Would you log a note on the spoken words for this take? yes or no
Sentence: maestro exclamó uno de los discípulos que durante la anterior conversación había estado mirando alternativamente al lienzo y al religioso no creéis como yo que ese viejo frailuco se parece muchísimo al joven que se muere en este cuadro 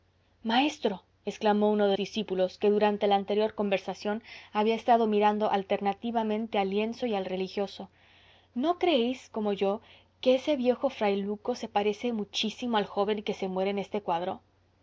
yes